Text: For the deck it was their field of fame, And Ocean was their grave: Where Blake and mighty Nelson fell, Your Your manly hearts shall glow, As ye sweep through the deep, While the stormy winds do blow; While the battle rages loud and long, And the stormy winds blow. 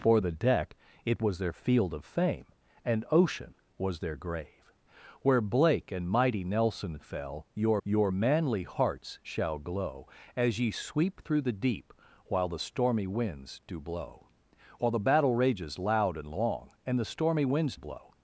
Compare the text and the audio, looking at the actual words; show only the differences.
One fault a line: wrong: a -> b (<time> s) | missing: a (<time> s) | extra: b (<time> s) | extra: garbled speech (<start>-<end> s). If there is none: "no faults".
no faults